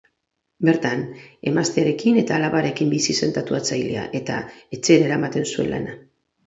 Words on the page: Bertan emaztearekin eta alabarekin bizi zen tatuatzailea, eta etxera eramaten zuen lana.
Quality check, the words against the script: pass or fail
pass